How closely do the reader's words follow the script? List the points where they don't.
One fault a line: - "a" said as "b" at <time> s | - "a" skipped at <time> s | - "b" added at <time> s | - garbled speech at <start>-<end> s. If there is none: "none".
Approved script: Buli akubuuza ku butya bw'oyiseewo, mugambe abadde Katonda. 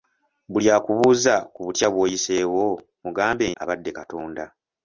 none